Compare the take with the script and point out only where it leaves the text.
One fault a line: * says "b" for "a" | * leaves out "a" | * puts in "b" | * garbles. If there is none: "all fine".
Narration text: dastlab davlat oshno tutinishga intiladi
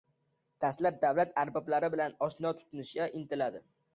* puts in "arboblari bilan"